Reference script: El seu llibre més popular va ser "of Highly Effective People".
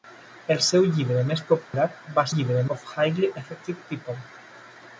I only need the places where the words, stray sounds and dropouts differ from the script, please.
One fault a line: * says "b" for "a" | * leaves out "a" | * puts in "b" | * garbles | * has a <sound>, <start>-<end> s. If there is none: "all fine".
* has a dropout, 1.6-1.7 s
* says "llibre" for "ser"